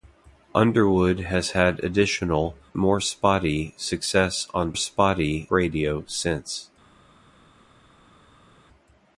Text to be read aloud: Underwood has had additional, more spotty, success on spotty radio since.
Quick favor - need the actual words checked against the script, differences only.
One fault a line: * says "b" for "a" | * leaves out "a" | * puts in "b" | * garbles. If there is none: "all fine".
all fine